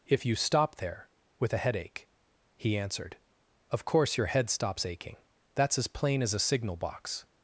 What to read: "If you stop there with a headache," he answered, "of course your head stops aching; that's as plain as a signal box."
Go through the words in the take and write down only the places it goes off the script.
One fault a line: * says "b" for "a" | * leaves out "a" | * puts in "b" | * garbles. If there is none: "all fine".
all fine